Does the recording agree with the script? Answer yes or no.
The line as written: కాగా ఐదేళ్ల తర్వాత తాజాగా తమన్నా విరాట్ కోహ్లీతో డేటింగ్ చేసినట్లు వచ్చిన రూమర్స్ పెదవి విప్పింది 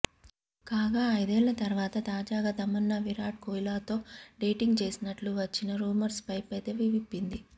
no